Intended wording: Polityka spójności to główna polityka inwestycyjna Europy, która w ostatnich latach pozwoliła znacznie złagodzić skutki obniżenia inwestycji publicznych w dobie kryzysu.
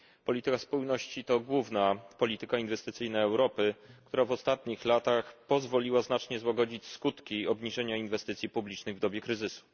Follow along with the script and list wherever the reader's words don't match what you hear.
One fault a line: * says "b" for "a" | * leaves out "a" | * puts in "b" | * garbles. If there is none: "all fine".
all fine